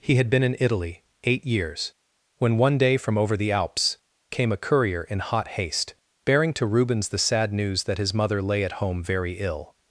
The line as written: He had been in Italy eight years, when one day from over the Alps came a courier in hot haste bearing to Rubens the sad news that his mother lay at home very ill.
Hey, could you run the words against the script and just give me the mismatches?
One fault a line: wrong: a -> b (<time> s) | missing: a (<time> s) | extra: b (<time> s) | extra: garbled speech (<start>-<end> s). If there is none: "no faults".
no faults